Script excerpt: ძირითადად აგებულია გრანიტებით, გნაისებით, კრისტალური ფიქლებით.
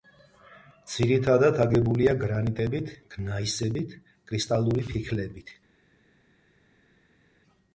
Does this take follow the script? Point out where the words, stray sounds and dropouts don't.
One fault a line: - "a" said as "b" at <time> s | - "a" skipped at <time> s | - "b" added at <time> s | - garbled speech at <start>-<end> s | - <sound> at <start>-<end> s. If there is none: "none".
none